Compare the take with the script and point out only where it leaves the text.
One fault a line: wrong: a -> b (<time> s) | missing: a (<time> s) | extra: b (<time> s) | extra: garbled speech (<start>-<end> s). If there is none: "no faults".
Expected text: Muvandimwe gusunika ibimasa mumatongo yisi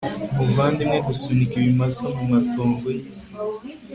no faults